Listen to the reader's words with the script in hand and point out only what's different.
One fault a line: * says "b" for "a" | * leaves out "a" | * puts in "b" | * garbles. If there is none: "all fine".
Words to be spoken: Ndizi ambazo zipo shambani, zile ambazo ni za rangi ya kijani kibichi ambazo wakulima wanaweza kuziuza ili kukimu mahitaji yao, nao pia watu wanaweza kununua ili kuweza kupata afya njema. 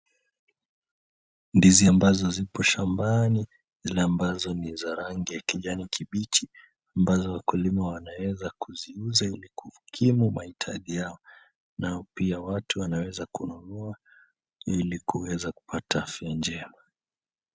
all fine